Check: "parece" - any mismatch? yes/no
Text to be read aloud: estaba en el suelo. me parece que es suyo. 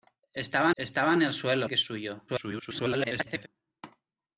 yes